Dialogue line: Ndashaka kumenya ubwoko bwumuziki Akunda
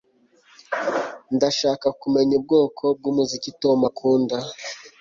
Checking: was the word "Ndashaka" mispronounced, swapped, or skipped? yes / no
no